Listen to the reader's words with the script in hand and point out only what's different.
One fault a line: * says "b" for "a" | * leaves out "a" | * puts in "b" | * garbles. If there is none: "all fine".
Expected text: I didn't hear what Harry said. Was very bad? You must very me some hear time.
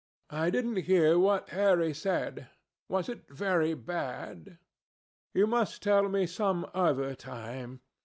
* puts in "it"
* says "tell" for "very"
* says "other" for "hear"